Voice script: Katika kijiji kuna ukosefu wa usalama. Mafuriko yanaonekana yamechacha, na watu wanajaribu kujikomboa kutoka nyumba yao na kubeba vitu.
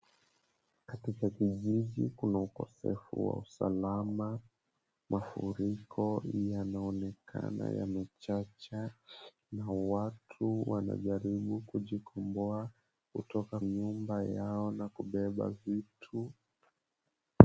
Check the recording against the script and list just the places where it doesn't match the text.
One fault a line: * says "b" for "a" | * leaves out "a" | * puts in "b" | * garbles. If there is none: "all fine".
all fine